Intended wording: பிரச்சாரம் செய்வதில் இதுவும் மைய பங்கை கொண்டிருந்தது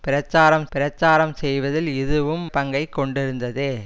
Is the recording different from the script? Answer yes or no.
yes